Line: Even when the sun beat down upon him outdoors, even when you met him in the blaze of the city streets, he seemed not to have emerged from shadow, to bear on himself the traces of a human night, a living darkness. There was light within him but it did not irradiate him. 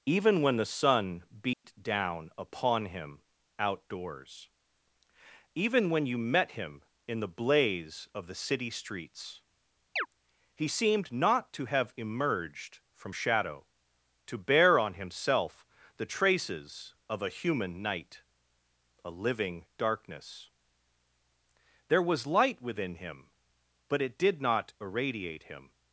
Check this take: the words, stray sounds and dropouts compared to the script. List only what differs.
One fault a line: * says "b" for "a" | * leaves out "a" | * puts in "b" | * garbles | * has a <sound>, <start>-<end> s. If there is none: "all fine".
* has a dropout, 1.5-1.6 s
* has a chirp, 10.0-10.1 s